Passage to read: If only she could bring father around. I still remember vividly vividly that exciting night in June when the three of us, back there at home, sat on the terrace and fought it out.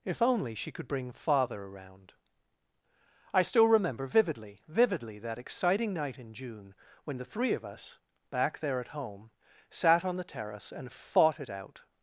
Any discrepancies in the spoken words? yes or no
no